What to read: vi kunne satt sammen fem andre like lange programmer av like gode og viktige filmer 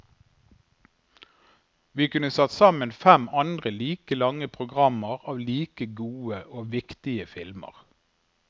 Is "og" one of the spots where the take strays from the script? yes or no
no